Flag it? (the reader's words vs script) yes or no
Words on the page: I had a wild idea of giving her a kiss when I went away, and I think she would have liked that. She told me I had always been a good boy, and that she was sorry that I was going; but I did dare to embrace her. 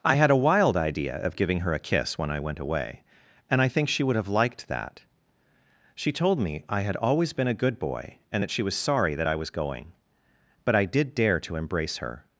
no